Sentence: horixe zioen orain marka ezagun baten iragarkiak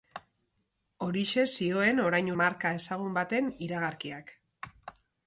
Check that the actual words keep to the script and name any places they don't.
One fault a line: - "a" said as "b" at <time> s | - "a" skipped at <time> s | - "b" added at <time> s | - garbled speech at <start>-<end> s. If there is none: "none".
none